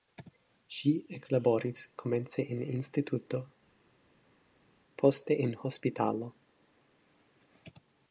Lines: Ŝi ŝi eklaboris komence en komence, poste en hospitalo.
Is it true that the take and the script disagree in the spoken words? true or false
true